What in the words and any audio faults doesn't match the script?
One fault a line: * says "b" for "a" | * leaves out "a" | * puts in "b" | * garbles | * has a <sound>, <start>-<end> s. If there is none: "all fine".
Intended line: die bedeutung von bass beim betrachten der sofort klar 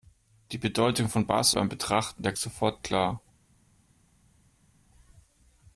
all fine